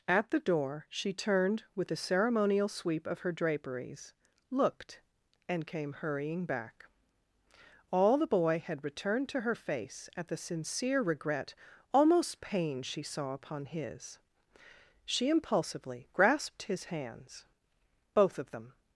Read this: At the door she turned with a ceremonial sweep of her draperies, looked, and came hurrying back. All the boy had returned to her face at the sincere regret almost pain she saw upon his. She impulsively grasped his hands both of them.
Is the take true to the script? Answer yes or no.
yes